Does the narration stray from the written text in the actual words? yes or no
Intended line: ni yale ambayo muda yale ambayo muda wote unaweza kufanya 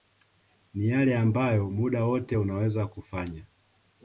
yes